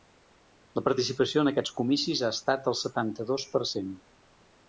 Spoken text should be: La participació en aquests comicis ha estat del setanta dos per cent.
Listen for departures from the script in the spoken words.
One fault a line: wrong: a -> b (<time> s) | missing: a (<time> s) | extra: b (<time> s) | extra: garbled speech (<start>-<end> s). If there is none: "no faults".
no faults